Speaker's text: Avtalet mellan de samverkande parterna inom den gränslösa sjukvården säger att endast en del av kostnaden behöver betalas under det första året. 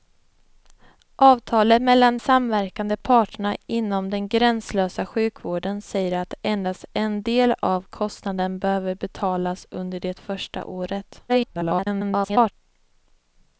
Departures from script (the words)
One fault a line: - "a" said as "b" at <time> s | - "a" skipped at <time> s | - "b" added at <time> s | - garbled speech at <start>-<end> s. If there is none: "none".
- "de" skipped at 2.2 s
- garbled speech at 11.3-12.5 s